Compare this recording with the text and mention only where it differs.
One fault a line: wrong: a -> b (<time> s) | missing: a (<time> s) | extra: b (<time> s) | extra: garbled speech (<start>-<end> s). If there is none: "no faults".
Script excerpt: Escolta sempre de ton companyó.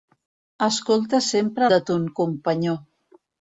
no faults